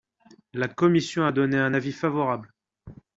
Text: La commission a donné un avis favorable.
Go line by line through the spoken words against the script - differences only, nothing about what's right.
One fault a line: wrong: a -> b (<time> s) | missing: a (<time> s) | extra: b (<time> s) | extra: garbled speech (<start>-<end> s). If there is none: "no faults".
no faults